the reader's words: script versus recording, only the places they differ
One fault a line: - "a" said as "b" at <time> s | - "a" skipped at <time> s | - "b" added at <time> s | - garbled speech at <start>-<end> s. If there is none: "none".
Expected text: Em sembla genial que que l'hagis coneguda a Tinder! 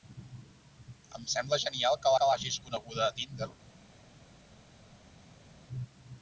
none